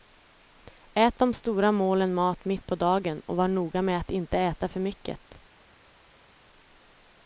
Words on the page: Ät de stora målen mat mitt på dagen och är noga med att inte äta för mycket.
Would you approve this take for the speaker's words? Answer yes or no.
no